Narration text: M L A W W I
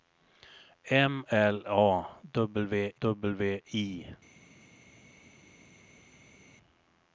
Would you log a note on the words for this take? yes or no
no